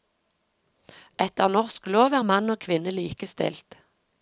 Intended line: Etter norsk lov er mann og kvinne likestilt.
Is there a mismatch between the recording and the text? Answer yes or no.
no